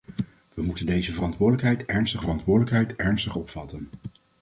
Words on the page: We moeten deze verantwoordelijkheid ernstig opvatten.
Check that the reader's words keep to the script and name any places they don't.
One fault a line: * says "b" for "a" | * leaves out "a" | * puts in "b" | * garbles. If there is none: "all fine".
* puts in "verantwoordelijkheid ernstig"